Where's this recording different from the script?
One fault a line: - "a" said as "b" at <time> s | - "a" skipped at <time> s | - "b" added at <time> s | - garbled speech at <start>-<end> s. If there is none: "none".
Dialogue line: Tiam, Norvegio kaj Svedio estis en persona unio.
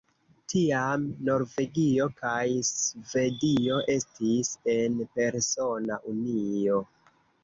none